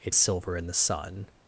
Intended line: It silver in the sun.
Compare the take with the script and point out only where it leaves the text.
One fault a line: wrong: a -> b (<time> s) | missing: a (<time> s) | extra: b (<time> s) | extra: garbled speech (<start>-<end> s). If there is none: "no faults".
no faults